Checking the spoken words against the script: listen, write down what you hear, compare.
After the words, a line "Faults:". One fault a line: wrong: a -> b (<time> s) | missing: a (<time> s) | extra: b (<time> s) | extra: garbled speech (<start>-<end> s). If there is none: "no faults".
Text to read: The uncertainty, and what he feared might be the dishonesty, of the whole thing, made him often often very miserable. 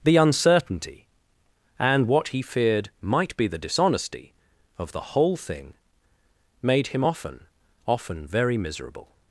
The uncertainty, and what he feared might be the dishonesty, of the whole thing, made him often often very miserable.
Faults:
no faults